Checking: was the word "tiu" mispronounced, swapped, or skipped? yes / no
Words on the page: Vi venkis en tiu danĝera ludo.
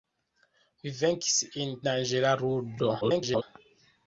yes